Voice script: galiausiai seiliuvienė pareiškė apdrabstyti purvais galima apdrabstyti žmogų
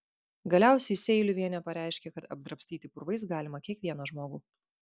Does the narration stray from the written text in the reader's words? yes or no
yes